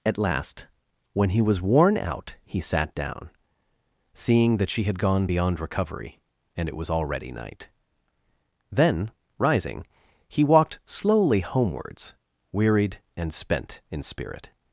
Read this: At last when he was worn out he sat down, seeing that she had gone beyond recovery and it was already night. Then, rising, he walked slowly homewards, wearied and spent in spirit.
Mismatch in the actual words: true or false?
false